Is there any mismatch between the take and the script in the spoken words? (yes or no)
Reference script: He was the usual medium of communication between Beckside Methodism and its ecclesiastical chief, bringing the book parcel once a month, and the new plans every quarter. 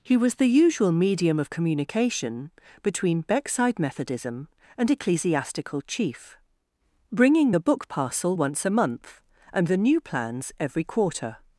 yes